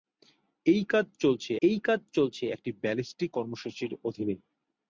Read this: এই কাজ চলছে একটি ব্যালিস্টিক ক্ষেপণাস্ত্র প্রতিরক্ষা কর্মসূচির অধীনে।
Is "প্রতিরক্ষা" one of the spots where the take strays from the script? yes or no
yes